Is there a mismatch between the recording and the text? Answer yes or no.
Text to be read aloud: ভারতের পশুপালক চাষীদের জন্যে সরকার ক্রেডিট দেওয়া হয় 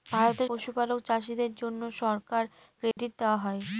no